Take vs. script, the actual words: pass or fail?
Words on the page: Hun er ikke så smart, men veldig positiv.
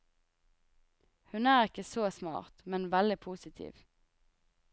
pass